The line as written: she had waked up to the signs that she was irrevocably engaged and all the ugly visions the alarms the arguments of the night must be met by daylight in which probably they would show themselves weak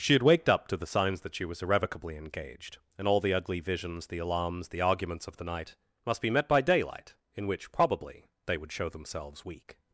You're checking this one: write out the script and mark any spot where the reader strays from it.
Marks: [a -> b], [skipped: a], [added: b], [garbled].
she had waked up to the signs that she was irrevocably engaged and all the ugly visions the alarms the arguments of the night must be met by daylight in which probably they would show themselves weak